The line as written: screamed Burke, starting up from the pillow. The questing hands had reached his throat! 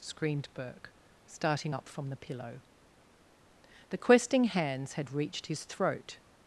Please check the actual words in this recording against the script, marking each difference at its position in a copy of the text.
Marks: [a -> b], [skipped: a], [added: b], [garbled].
screamed Burke, starting up from the pillow. The questing hands had reached his throat!